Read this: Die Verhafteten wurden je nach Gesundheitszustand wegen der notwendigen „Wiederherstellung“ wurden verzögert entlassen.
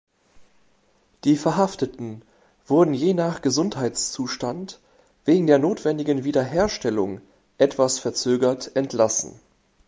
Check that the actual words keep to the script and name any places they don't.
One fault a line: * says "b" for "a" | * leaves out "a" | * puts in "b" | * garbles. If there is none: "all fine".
* says "etwas" for "wurden"